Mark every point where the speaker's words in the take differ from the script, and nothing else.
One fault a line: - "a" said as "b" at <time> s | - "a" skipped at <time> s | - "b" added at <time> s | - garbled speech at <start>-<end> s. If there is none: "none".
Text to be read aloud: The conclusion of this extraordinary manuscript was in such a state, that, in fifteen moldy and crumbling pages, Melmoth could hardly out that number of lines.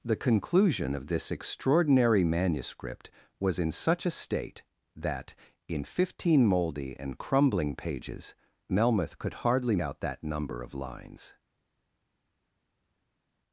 none